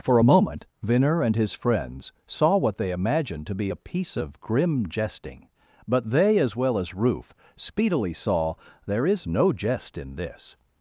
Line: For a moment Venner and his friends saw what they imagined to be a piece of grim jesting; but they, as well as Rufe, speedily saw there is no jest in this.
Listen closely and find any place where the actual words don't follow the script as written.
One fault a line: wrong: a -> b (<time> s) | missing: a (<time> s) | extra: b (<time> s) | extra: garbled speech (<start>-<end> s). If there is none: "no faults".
no faults